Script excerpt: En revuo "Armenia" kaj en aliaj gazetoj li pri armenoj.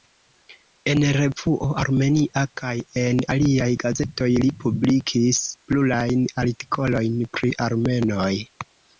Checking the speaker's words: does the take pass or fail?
fail